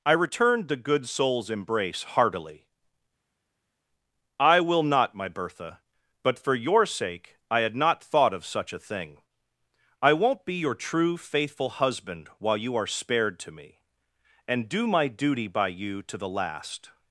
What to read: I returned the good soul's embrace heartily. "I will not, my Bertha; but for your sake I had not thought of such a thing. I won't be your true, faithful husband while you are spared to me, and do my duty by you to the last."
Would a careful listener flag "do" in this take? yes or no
no